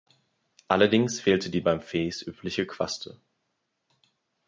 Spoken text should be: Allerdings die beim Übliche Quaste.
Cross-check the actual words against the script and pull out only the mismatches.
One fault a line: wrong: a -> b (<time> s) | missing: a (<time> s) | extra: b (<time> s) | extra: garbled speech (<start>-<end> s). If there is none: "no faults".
extra: fehlte (1.2 s)
extra: Fes (1.8 s)